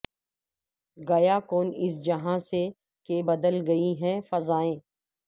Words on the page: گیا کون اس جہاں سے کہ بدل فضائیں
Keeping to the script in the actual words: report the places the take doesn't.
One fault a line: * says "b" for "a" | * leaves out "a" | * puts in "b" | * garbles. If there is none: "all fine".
* puts in "گئی ہیں"